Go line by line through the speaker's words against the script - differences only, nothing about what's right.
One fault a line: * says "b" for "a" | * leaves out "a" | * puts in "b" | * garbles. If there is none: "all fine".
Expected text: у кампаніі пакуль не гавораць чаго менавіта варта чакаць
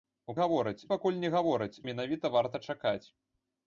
* says "гавораць" for "кампаніі"
* leaves out "чаго"